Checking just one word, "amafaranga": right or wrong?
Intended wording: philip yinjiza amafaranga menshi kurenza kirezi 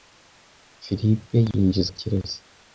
wrong